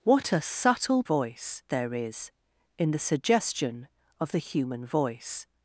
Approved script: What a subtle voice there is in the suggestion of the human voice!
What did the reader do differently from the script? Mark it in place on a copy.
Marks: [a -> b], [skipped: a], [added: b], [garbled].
What a subtle voice there is in the suggestion of the human voice!